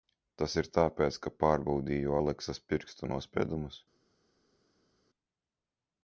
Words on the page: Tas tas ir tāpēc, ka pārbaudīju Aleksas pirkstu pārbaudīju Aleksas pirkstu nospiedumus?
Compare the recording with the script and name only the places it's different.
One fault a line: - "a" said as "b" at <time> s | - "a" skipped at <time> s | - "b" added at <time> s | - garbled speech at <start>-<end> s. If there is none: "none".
- "tas" skipped at 0.5 s
- "pārbaudīju Aleksas pirkstu" skipped at 3.1 s